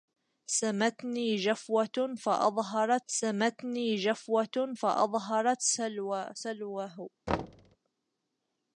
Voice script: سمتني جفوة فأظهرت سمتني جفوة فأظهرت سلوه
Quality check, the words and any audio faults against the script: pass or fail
fail